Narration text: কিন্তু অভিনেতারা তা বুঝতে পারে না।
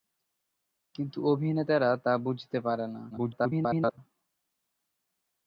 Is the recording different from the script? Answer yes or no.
yes